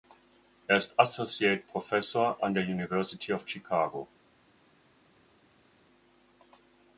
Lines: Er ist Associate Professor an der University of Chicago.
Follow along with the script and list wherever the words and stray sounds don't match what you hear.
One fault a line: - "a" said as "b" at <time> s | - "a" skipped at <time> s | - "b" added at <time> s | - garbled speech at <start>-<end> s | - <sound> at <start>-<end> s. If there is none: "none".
none